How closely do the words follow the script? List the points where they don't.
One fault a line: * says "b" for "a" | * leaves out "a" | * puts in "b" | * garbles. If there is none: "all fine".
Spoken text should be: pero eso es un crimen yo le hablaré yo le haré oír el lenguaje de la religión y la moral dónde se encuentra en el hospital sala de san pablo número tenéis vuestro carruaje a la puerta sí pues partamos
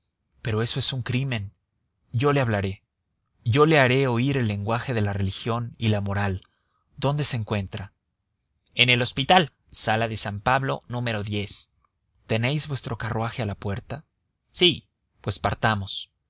all fine